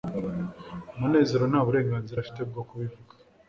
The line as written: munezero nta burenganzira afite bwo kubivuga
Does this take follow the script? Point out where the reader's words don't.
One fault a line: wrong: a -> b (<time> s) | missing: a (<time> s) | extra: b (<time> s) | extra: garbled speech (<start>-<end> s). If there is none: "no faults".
no faults